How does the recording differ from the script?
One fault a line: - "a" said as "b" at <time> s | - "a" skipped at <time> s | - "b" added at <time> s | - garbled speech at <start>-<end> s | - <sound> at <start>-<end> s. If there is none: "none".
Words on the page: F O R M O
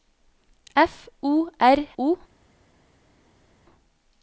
- "M" skipped at 1.9 s